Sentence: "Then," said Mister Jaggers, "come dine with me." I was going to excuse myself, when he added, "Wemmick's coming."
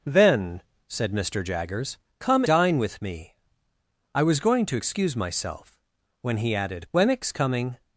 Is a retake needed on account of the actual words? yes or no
no